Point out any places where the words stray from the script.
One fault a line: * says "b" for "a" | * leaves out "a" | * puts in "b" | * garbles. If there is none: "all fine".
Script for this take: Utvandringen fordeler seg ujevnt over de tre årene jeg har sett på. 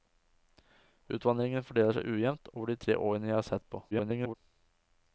* garbles